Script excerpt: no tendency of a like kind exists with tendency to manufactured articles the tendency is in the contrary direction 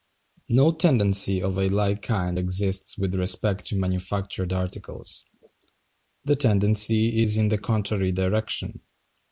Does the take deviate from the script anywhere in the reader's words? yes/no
yes